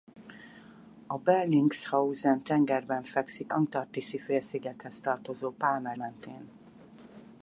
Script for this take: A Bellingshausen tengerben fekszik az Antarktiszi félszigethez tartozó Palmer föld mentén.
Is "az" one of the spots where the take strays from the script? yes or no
yes